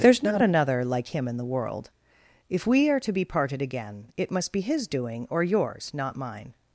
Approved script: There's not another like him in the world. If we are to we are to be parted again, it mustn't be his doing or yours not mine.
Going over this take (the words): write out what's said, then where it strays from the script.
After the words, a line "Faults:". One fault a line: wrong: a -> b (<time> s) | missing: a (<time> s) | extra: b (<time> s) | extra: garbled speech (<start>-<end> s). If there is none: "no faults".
There's not another like him in the world. If we are to be parted again, it must be his doing or yours not mine.
Faults:
missing: we are to (3.1 s)
wrong: mustn't -> must (4.3 s)